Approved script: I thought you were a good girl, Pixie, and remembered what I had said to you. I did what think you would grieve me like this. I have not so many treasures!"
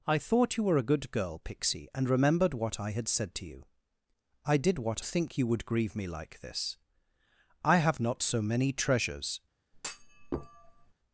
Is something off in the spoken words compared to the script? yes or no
no